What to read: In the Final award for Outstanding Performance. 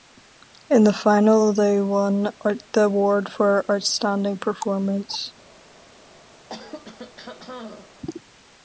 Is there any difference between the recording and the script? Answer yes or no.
yes